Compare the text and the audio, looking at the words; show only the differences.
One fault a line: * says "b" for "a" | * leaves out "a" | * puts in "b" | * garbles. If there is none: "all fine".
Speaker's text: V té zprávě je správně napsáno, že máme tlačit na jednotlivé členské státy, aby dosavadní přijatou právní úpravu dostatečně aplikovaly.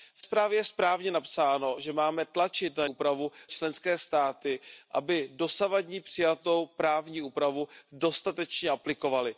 * leaves out "té"
* says "úpravu" for "jednotlivé"